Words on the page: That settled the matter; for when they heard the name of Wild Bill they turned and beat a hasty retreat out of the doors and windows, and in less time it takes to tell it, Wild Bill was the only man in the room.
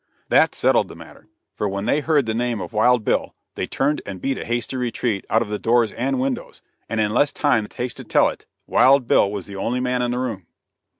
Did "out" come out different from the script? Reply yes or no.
no